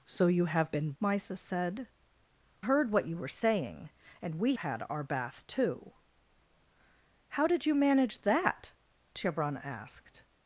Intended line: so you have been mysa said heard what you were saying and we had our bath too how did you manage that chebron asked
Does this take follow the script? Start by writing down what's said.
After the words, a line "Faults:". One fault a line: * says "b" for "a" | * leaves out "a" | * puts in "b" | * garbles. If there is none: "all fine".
so you have been mysa said heard what you were saying and we had our bath too how did you manage that chebron asked
Faults:
all fine